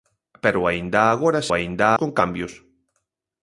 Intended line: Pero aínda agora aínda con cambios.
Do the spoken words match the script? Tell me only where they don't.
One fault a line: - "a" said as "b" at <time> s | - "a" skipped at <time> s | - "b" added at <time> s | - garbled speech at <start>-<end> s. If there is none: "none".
none